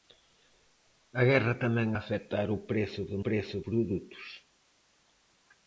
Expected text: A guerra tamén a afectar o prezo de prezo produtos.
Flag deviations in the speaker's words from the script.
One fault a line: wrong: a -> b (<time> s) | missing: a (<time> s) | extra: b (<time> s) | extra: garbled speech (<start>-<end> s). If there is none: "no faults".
no faults